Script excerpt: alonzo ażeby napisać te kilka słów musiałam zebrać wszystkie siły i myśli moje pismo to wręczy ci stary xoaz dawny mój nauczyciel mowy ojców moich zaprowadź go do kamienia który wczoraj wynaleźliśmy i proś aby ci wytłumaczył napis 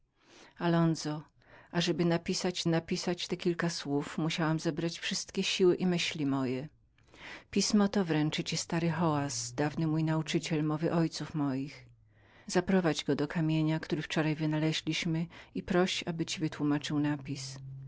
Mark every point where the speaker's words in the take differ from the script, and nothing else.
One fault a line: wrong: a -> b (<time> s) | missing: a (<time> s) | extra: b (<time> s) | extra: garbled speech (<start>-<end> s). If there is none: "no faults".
extra: napisać (2.7 s)